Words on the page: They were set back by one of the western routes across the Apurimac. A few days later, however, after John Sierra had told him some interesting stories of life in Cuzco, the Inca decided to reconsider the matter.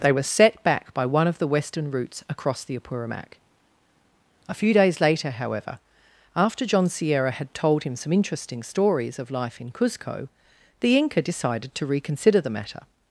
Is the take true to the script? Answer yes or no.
yes